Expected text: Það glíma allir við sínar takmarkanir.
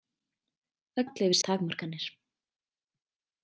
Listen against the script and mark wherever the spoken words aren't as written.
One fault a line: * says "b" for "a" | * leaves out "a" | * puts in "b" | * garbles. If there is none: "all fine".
* leaves out "glíma"
* leaves out "sínar"